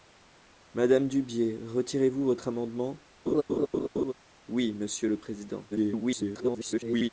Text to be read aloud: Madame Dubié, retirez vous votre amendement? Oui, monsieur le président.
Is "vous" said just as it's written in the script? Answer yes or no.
yes